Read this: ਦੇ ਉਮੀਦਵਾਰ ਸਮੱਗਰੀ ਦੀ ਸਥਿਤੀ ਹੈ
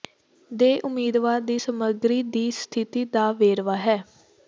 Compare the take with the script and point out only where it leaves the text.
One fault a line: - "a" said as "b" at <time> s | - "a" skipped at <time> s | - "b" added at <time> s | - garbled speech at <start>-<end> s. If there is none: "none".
- "ਦੀ" added at 1.4 s
- "ਦਾ ਵੇਰਵਾ" added at 3.1 s